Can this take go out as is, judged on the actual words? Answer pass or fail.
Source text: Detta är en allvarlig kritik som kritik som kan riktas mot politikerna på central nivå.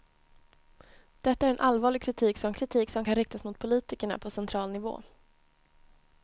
pass